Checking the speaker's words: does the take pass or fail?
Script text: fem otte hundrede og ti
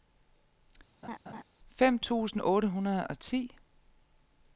fail